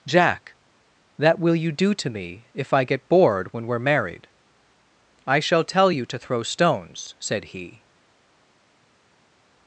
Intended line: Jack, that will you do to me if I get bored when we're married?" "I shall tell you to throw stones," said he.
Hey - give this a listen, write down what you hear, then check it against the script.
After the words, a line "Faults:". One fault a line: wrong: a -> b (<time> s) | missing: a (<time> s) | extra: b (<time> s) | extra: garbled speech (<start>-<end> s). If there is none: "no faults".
Jack, that will you do to me if I get bored when we're married?" "I shall tell you to throw stones," said he.
Faults:
no faults